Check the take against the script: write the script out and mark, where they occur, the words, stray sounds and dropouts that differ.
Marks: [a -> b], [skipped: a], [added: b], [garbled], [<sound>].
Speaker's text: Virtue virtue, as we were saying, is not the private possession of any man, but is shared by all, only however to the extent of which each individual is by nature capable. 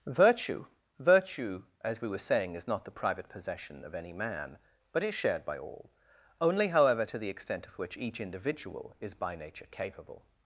Virtue virtue, as we were saying, is not the private possession of any man, but is shared by all, only however to the extent of which each individual is by nature capable.